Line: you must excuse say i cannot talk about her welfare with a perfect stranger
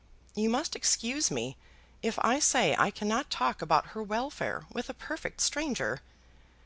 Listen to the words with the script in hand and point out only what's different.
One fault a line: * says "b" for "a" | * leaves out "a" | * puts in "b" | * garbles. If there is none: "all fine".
* puts in "me if i"